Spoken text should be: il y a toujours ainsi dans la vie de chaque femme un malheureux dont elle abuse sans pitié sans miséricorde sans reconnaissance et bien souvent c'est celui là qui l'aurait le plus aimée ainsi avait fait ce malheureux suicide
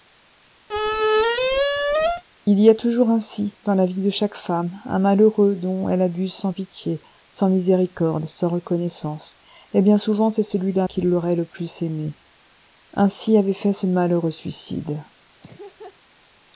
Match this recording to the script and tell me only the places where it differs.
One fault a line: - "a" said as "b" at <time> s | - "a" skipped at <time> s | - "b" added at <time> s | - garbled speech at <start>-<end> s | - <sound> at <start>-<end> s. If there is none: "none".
- squeak at 0.7-2.2 s
- laugh at 15.4-16.0 s